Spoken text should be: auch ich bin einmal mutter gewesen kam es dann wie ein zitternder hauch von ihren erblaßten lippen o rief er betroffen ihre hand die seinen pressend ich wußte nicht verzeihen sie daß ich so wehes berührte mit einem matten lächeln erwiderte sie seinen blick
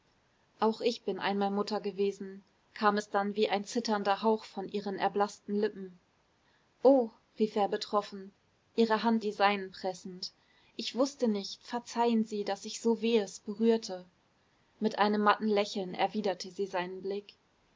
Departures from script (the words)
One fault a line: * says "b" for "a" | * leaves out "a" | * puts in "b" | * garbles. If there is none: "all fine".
all fine